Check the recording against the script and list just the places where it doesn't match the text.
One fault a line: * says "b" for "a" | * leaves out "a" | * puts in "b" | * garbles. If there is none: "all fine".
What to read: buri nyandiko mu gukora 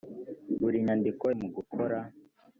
all fine